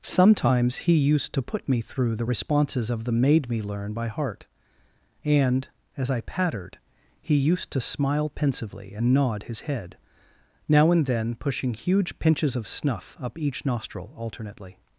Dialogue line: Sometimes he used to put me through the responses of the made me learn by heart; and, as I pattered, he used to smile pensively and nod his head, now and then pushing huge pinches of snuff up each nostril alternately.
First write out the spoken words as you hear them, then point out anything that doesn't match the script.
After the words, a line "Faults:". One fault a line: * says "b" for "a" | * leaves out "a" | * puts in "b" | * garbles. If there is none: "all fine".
Sometimes he used to put me through the responses of the made me learn by heart; and, as I pattered, he used to smile pensively and nod his head, now and then pushing huge pinches of snuff up each nostril alternately.
Faults:
all fine